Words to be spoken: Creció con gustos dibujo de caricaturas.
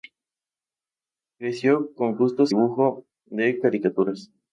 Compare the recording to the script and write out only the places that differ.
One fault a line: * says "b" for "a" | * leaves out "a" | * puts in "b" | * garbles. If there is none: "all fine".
all fine